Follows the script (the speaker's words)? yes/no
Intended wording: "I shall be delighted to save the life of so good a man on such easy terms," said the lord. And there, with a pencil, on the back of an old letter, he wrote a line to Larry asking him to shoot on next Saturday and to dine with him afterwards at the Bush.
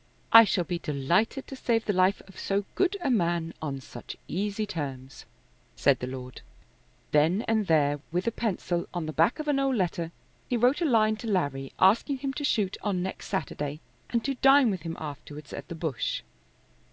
no